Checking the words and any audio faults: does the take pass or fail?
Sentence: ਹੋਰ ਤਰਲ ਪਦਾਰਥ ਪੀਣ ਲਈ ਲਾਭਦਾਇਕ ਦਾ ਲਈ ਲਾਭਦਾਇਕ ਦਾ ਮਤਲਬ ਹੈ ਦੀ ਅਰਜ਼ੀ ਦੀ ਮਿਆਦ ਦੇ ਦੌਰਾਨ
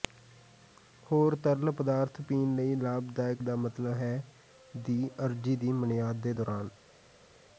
fail